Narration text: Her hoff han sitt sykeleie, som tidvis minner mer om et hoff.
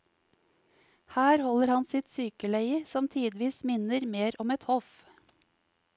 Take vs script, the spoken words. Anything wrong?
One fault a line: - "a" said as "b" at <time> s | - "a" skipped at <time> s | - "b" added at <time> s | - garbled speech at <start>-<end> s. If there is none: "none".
- "hoff" said as "holder" at 1.4 s